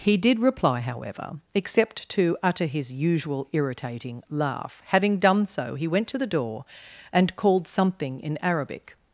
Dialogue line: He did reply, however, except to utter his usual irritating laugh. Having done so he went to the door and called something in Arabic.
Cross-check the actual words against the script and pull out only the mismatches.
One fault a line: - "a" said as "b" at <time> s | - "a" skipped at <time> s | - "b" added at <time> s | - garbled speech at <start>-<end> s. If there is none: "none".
none